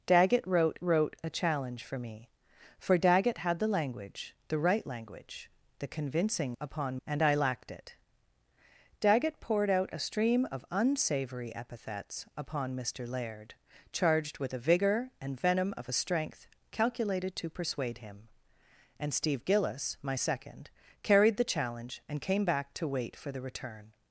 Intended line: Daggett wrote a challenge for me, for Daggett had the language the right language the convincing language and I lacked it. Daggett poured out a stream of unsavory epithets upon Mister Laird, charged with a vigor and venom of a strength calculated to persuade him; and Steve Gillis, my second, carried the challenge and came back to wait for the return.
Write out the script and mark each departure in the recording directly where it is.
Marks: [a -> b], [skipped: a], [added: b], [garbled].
Daggett wrote [added: wrote] a challenge for me, for Daggett had the language the right language the convincing [language -> upon] and I lacked it. Daggett poured out a stream of unsavory epithets upon Mister Laird, charged with a vigor and venom of a strength calculated to persuade him; and Steve Gillis, my second, carried the challenge and came back to wait for the return.